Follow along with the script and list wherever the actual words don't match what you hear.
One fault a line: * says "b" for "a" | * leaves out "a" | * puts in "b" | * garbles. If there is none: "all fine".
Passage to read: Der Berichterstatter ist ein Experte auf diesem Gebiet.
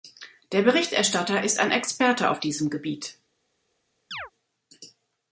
all fine